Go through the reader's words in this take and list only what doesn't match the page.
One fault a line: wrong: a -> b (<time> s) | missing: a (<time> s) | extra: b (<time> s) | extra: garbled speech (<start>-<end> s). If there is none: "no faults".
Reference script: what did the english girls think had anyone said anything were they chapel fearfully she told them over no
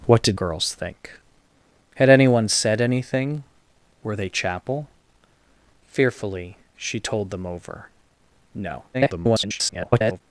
missing: the english (0.4 s)
extra: garbled speech (8.9-10.2 s)